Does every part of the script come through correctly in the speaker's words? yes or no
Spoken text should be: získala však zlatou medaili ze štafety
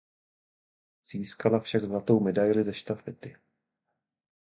yes